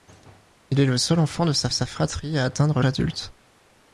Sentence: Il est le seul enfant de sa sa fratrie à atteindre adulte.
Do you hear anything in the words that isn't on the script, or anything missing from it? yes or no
no